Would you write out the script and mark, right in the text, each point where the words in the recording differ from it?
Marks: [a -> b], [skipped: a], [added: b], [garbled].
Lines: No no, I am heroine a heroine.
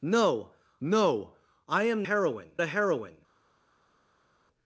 No no, I am heroine a heroine.